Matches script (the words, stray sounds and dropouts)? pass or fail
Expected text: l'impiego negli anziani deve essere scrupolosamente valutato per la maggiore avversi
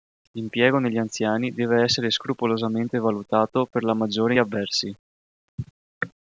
pass